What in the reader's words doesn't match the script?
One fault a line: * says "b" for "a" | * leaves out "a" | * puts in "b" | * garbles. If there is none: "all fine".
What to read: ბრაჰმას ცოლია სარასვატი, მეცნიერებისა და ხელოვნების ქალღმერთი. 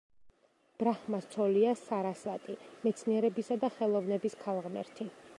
all fine